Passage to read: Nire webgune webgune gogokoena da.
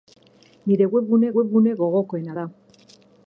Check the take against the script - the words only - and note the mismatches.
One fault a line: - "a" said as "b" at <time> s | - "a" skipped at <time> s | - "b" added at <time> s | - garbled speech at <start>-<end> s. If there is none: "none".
none